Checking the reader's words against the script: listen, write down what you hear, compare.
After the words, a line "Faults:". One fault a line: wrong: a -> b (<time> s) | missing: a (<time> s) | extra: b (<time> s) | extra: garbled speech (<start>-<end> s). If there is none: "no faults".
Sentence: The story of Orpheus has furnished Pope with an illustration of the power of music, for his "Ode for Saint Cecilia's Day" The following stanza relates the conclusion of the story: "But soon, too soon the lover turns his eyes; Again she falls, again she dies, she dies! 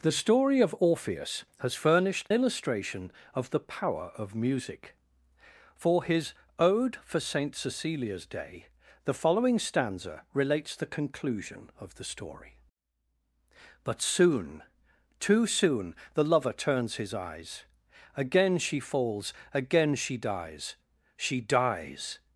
The story of Orpheus has furnished Illustration of the power of music, for his "Ode for Saint Cecilia's Day" The following stanza relates the conclusion of the story: "But soon, too soon the lover turns his eyes; Again she falls, again she dies, she dies!
Faults:
missing: Pope with an (2.3 s)